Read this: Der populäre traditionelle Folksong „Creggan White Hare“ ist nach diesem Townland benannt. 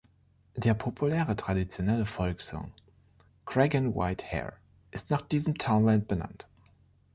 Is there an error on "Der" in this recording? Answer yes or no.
no